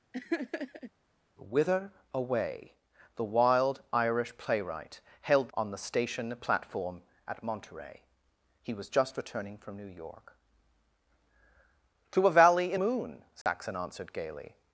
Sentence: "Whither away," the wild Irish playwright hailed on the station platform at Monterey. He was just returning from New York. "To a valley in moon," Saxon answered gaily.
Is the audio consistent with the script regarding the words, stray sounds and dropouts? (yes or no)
no